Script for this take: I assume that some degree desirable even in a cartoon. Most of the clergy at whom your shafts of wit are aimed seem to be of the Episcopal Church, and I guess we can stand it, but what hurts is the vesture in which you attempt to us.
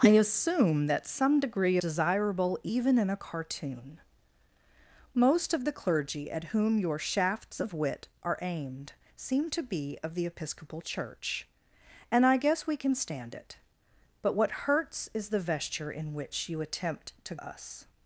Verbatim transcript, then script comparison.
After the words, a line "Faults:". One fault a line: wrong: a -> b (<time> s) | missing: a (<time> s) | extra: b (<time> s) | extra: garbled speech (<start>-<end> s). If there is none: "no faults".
I assume that some degree desirable even in a cartoon. Most of the clergy at whom your shafts of wit are aimed seem to be of the Episcopal Church, and I guess we can stand it, but what hurts is the vesture in which you attempt to us.
Faults:
no faults